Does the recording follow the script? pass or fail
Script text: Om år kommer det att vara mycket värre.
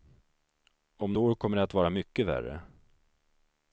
pass